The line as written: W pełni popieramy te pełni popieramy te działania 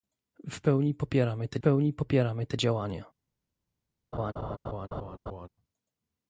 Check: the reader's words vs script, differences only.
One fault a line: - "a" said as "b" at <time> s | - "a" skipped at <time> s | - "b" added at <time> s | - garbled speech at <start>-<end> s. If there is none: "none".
none